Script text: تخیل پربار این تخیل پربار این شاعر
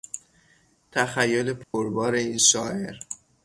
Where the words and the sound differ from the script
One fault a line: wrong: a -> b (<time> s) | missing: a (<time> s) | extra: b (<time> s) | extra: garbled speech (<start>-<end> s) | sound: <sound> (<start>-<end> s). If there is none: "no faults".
sound: dropout (1.6-1.7 s)
missing: تخیل پربار این (2.4 s)